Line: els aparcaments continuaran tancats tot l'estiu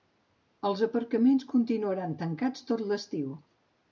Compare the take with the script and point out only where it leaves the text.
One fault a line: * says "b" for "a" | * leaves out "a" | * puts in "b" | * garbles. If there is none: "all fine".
all fine